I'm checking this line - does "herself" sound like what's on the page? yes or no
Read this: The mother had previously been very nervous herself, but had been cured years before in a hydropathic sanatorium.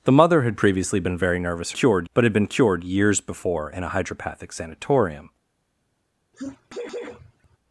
no